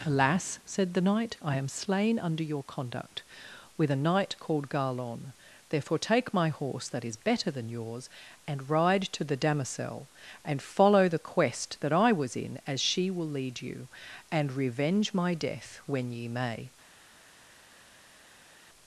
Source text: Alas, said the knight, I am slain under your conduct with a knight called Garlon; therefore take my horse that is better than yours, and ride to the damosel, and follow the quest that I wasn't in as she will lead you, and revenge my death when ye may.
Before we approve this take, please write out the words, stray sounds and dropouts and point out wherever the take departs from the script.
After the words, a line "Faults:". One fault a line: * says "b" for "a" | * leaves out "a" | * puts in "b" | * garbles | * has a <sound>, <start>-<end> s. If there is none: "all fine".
Alas, said the knight, I am slain under your conduct with a knight called Garlon; therefore take my horse that is better than yours, and ride to the damosel, and follow the quest that I was in as she will lead you, and revenge my death when ye may.
Faults:
* says "was" for "wasn't"